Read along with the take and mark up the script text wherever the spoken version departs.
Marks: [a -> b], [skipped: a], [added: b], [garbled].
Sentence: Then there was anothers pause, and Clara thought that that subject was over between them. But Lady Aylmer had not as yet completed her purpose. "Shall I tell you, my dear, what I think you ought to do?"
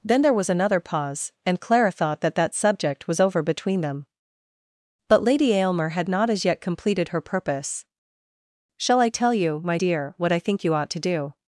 Then there was [anothers -> another] pause, and Clara thought that that subject was over between them. But Lady Aylmer had not as yet completed her purpose. "Shall I tell you, my dear, what I think you ought to do?"